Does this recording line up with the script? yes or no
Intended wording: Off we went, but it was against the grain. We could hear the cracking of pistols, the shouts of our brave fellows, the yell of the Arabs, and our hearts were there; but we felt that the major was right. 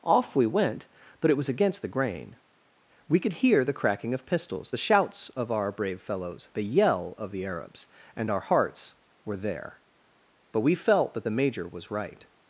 yes